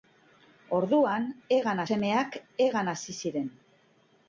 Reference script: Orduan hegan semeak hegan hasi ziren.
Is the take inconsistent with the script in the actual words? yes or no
no